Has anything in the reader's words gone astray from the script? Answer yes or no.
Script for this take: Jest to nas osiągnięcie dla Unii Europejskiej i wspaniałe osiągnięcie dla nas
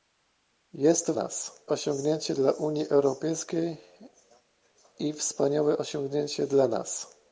no